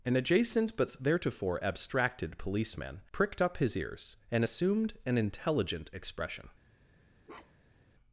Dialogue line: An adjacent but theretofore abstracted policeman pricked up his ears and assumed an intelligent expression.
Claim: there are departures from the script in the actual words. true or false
false